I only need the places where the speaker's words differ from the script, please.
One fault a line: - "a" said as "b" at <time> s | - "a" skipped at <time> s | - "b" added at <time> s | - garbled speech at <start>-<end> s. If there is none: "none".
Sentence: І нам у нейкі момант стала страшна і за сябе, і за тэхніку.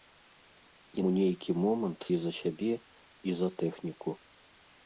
- "нам" skipped at 1.0 s
- "стала страшна" skipped at 2.0 s